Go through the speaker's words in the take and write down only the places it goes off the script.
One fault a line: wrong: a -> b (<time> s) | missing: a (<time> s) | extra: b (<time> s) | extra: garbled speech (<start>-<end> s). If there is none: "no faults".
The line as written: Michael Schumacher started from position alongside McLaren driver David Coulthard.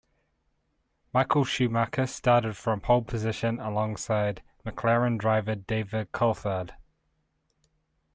extra: pole (2.8 s)